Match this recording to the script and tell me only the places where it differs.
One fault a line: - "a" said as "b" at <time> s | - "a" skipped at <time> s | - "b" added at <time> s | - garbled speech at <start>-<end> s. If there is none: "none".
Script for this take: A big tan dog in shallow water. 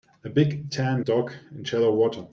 none